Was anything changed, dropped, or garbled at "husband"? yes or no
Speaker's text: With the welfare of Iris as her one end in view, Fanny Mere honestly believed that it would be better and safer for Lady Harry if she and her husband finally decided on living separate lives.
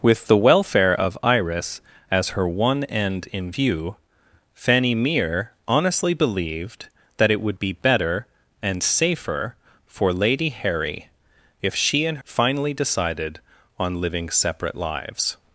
yes